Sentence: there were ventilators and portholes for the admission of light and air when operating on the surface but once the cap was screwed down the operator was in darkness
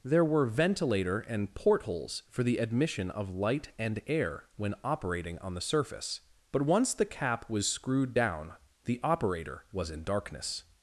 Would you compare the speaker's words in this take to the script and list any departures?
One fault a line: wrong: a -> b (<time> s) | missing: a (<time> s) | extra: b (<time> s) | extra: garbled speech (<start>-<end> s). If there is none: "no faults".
wrong: ventilators -> ventilator (0.5 s)